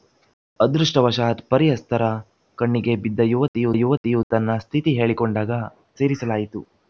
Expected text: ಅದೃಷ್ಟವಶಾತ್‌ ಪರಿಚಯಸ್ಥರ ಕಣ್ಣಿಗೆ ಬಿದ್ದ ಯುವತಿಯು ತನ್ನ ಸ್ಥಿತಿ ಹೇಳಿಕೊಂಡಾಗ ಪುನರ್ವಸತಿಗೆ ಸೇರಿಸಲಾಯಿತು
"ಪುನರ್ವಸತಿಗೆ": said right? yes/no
no